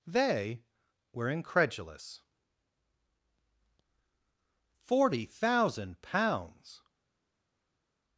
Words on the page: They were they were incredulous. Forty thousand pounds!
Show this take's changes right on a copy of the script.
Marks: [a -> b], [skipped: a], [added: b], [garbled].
They were [skipped: they were] incredulous. Forty thousand pounds!